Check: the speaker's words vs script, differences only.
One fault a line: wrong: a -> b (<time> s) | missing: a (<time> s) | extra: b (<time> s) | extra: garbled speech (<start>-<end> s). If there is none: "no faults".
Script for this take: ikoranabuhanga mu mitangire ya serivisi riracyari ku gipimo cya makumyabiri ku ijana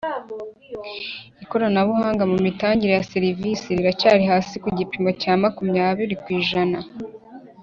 extra: hasi (4.3 s)